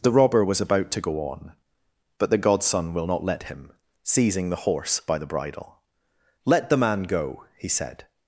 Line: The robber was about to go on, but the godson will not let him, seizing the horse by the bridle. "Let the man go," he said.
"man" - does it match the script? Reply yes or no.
yes